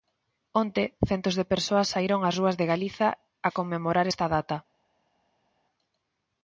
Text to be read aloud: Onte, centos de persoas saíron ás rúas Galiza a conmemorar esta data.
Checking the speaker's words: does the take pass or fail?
fail